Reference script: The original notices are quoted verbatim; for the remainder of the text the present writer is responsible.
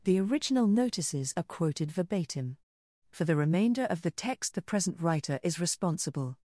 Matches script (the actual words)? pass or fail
pass